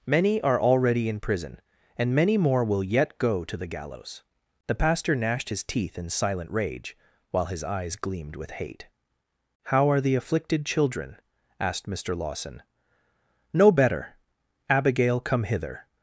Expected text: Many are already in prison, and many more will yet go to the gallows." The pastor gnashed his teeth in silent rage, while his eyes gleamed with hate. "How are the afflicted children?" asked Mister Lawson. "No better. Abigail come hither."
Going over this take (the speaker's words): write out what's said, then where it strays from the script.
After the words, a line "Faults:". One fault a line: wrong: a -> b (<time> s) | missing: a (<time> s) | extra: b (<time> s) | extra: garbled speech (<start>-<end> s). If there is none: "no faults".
Many are already in prison, and many more will yet go to the gallows." The pastor gnashed his teeth in silent rage, while his eyes gleamed with hate. "How are the afflicted children?" asked Mister Lawson. "No better. Abigail come hither."
Faults:
no faults